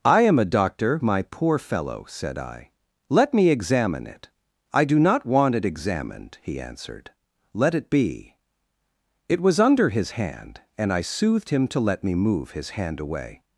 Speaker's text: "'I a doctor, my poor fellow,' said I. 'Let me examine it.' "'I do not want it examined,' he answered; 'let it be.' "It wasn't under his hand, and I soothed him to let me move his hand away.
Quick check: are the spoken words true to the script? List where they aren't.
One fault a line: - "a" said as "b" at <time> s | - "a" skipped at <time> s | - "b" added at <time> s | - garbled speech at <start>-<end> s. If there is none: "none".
- "am" added at 0.2 s
- "wasn't" said as "was" at 9.4 s